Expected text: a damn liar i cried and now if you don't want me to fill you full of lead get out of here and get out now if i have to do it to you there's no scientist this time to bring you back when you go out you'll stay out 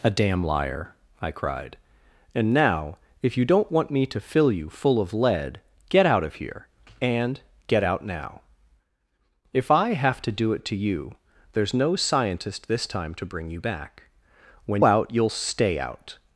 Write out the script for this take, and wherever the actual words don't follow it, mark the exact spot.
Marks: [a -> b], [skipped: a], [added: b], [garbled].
a damn liar i cried and now if you don't want me to fill you full of lead get out of here and get out now if i have to do it to you there's no scientist this time to bring you back when [skipped: you go] out you'll stay out